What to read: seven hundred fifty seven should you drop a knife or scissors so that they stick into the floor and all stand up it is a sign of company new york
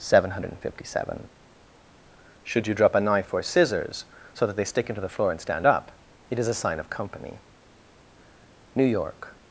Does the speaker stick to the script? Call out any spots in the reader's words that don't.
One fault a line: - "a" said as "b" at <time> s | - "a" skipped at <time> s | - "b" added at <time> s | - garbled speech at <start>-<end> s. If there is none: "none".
- "all" skipped at 5.4 s